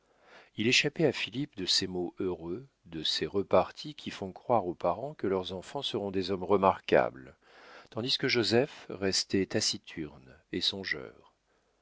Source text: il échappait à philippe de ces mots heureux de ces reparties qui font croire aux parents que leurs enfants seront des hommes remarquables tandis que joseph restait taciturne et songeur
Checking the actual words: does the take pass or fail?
pass